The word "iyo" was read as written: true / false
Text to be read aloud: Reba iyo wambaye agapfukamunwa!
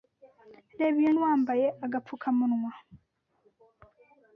true